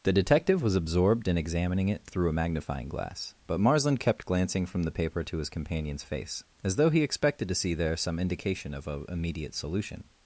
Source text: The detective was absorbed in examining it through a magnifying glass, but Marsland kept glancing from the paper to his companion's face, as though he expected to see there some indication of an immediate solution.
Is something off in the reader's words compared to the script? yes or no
no